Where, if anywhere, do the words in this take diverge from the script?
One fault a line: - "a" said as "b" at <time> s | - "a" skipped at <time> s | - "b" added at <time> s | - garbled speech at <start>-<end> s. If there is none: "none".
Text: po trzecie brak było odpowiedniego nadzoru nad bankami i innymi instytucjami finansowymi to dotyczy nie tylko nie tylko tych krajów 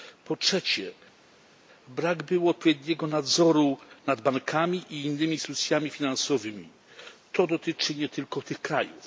- "nie tylko" skipped at 8.4 s